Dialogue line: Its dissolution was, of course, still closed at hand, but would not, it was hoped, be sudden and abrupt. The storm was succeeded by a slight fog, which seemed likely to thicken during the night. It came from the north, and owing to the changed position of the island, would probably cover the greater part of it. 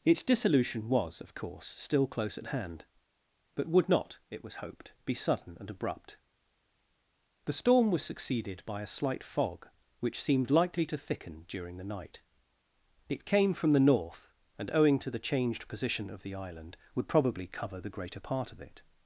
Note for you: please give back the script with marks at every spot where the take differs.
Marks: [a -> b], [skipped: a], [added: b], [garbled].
Its dissolution was, of course, still [closed -> close] at hand, but would not, it was hoped, be sudden and abrupt. The storm was succeeded by a slight fog, which seemed likely to thicken during the night. It came from the north, and owing to the changed position of the island, would probably cover the greater part of it.